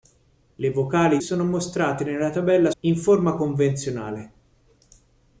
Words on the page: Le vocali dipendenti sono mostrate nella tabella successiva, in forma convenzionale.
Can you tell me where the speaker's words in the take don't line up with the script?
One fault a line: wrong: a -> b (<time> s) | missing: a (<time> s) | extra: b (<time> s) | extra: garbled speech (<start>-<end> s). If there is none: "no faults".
missing: dipendenti (1.2 s)
missing: successiva (2.7 s)